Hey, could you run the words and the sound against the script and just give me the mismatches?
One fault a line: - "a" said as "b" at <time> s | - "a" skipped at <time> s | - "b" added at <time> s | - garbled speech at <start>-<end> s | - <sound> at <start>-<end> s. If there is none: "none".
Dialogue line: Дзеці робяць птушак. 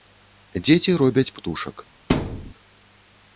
- thud at 2.1-2.5 s